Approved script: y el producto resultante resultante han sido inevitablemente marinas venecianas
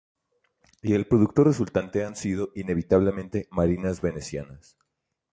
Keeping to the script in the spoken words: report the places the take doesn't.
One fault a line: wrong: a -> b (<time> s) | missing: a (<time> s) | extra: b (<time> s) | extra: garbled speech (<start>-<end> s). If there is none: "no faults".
missing: resultante (2.0 s)